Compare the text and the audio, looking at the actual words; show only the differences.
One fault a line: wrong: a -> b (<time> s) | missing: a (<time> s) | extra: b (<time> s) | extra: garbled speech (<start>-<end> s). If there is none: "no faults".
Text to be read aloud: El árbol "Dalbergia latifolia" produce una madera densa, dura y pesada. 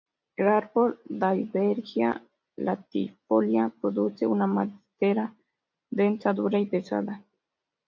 no faults